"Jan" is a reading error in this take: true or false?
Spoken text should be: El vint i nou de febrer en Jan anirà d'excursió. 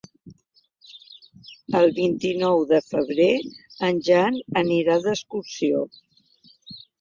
false